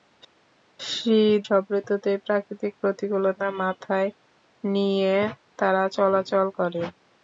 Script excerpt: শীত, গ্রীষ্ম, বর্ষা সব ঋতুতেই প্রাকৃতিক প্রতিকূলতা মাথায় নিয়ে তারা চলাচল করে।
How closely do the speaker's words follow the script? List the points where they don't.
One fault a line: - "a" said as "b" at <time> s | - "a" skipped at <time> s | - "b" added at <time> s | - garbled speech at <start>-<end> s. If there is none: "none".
- "গ্রীষ্ম বর্ষা" skipped at 1.4 s